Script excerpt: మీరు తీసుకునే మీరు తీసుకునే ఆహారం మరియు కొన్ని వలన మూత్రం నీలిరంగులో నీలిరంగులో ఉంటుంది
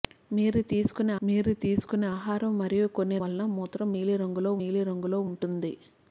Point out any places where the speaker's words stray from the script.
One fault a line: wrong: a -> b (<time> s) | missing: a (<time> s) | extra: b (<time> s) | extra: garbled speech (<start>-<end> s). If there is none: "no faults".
no faults